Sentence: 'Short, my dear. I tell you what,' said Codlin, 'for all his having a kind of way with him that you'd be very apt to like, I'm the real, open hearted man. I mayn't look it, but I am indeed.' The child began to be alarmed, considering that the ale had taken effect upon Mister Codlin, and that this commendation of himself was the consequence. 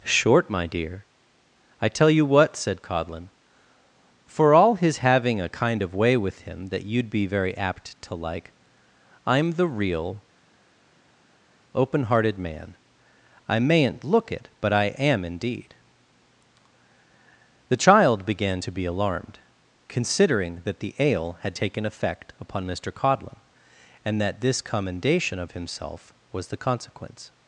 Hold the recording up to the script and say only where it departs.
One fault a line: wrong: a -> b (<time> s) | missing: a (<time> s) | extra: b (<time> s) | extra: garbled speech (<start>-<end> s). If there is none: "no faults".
no faults